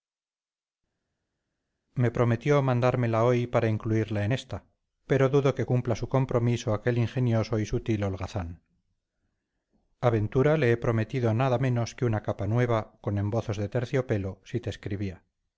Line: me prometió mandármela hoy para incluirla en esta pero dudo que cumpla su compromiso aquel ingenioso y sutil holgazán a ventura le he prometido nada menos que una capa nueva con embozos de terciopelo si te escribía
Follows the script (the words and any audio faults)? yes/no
yes